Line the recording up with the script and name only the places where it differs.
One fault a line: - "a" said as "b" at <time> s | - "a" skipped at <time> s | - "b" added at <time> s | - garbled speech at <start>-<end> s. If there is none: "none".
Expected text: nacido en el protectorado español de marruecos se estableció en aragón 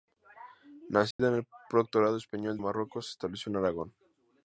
- "de" skipped at 2.6 s